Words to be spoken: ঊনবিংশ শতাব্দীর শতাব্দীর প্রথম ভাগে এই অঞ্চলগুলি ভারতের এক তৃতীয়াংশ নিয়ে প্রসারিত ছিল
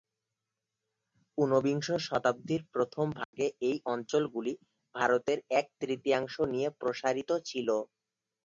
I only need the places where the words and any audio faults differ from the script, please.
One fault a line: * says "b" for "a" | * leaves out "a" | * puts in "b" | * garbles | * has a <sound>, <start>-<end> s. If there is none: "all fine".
* leaves out "শতাব্দীর"
* has a dropout, 3.2-3.3 s